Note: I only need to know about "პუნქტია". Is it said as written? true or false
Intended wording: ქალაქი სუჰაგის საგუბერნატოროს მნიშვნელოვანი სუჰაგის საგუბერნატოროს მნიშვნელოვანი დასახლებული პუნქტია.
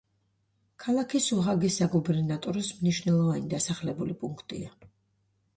true